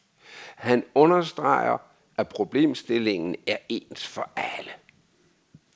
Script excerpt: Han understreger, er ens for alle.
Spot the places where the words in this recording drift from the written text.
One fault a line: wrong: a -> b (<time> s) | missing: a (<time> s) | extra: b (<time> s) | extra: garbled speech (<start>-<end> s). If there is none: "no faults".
extra: at problemstillingen (2.2 s)